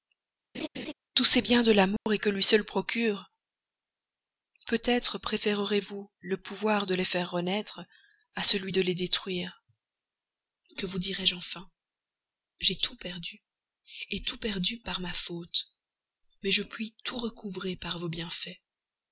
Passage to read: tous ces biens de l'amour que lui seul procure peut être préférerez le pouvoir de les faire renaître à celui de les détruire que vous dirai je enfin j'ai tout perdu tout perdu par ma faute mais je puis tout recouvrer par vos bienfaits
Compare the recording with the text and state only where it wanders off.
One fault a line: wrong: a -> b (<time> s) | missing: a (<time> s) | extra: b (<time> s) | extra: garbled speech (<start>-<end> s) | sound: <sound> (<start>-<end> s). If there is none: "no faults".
sound: laugh (0.5-0.9 s)
sound: dropout (2.0-2.1 s)
extra: vous (5.8 s)